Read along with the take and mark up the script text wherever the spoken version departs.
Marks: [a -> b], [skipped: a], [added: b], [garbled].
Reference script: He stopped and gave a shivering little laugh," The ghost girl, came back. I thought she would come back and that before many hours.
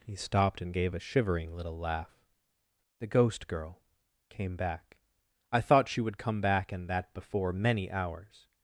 He stopped and gave a shivering little laugh," The ghost girl, came back. I thought she would come back and that before many hours.